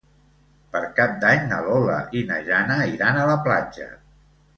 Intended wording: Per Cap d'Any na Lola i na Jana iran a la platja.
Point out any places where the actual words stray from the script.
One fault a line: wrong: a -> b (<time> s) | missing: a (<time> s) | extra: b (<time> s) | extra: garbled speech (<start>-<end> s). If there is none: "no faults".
no faults